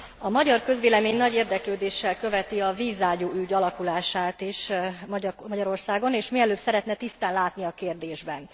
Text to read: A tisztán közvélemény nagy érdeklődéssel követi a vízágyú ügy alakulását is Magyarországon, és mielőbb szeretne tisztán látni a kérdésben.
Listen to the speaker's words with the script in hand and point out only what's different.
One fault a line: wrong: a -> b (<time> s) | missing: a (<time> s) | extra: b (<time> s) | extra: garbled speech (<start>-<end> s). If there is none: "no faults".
wrong: tisztán -> magyar (0.3 s)